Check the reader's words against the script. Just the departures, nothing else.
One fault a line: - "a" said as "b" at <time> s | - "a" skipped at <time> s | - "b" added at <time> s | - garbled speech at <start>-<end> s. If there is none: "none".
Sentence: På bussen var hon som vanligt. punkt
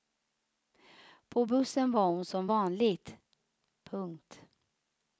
none